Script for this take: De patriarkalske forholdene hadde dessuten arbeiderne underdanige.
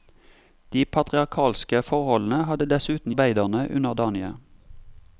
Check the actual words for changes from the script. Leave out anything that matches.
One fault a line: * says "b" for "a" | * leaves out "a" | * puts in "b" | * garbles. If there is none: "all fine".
all fine